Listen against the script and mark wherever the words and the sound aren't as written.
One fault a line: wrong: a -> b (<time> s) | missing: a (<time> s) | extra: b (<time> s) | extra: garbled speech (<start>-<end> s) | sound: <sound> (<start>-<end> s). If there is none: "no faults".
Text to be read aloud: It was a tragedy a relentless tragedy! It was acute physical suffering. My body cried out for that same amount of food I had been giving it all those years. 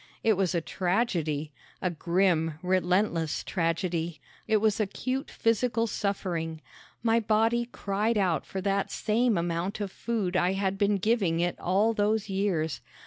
extra: grim (1.9 s)